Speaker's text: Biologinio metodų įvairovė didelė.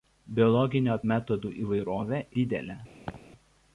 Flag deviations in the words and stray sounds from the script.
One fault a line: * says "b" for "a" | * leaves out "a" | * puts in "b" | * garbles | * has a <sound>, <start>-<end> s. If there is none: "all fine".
* has a laugh, 3.1-3.2 s